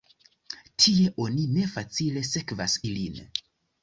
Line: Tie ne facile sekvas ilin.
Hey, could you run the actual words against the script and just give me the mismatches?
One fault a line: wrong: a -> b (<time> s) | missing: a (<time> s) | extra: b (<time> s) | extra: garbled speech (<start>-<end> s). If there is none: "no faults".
extra: oni (1.2 s)